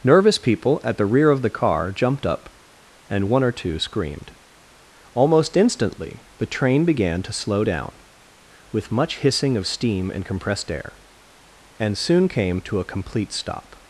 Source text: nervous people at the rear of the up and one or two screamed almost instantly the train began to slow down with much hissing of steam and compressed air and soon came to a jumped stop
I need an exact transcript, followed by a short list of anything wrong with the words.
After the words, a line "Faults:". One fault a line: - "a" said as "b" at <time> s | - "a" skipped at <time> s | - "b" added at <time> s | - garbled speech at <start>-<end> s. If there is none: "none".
nervous people at the rear of the car jumped up and one or two screamed almost instantly the train began to slow down with much hissing of steam and compressed air and soon came to a complete stop
Faults:
- "car jumped" added at 1.5 s
- "jumped" said as "complete" at 12.8 s